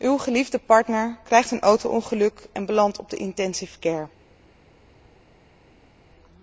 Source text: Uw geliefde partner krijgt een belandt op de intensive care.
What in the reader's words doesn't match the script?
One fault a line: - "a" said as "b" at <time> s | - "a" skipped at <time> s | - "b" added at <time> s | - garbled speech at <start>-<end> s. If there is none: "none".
- "auto ongeluk en" added at 1.6 s